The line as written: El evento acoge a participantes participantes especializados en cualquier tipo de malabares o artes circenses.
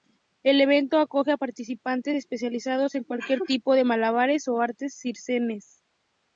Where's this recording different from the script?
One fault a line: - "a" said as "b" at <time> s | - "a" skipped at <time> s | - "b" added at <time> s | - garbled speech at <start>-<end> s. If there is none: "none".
- "participantes" skipped at 2.1 s